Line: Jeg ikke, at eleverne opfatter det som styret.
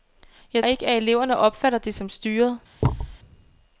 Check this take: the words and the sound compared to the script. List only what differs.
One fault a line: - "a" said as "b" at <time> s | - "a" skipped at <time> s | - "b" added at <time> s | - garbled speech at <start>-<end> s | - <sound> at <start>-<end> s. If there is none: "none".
- thud at 2.8-3.2 s